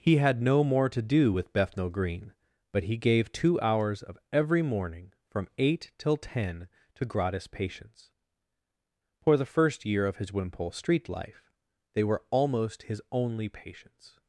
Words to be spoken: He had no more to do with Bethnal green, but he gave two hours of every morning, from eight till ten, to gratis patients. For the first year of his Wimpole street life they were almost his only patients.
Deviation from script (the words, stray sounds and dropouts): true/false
false